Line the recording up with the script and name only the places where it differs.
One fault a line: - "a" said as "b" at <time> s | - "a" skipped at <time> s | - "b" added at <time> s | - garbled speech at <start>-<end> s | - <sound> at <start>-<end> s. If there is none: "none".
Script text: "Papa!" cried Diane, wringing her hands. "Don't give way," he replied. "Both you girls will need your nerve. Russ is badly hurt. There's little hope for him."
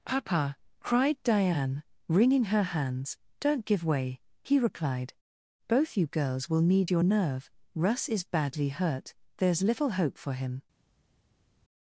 none